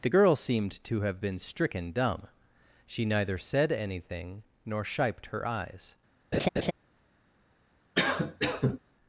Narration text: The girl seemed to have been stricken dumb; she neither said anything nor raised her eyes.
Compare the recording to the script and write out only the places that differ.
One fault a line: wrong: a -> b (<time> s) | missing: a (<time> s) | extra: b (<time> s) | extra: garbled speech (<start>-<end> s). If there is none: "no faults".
wrong: raised -> shiped (4.8 s)